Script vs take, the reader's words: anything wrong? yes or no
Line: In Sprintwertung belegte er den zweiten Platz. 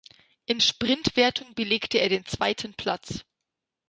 no